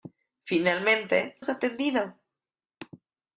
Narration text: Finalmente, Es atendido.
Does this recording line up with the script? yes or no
yes